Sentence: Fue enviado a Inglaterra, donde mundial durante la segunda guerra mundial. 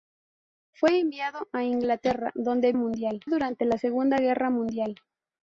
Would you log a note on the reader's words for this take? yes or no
no